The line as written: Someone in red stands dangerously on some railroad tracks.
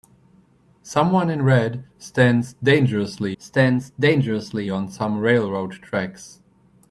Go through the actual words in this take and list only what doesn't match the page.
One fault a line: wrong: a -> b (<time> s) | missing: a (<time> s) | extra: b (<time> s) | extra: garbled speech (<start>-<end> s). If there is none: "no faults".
extra: stands dangerously (3.4 s)